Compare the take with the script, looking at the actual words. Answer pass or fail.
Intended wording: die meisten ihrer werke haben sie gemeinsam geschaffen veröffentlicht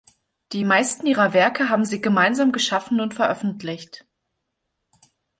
fail